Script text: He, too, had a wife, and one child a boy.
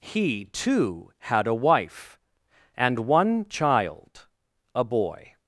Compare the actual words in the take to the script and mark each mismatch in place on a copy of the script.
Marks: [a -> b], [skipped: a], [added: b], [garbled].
He, too, had a wife, and one child a boy.